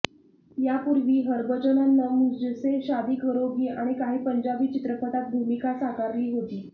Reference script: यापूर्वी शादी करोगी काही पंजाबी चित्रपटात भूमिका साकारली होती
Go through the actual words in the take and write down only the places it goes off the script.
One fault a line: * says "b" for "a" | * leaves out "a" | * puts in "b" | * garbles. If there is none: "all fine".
* puts in "हरभजननं मुझसे"
* puts in "आणि"